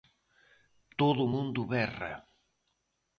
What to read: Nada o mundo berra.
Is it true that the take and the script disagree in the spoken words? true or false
true